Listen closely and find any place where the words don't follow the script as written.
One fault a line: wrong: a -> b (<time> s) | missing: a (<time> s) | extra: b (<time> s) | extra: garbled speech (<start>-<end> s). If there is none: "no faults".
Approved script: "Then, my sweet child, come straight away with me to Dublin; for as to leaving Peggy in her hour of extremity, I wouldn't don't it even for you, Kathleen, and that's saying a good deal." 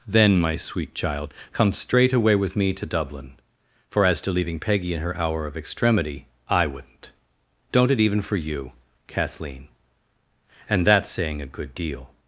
no faults